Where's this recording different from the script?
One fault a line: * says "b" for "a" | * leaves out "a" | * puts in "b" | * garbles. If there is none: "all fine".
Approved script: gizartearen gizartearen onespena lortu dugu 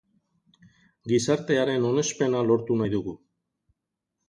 * leaves out "gizartearen"
* puts in "nahi"